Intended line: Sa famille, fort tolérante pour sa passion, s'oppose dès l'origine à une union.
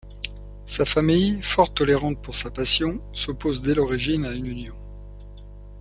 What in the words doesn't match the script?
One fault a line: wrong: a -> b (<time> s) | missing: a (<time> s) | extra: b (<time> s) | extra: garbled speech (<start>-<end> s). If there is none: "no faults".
no faults